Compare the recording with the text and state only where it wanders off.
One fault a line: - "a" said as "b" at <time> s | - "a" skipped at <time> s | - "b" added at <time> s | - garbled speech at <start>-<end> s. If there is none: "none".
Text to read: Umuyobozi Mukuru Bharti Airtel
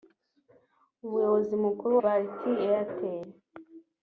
none